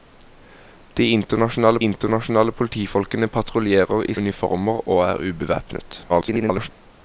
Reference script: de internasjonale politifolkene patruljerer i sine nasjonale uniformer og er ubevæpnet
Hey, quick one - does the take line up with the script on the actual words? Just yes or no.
no